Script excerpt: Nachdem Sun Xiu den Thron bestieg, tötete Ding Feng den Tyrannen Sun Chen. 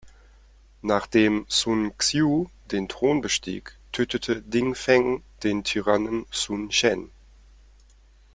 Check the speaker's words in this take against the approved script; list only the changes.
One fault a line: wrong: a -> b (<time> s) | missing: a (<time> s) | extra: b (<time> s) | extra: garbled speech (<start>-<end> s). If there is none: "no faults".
no faults